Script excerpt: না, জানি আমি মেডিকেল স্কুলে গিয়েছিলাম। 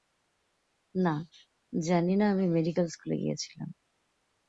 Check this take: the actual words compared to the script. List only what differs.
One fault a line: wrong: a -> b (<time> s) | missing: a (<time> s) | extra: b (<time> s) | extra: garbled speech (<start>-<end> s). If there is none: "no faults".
extra: না (2.1 s)